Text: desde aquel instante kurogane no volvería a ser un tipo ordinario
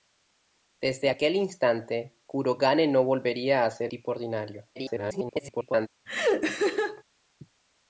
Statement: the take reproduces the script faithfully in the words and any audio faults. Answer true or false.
false